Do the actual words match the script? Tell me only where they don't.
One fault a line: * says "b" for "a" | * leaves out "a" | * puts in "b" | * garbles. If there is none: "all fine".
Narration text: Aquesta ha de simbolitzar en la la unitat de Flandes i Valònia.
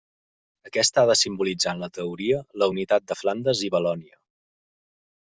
* puts in "teoria"